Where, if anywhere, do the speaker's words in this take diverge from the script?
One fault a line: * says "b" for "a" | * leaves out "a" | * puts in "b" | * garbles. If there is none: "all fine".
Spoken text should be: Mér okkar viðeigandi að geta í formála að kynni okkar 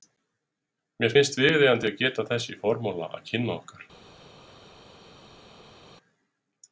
* says "finnst" for "okkar"
* puts in "þess"